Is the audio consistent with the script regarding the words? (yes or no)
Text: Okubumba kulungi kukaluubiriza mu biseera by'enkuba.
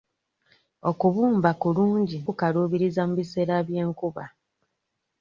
yes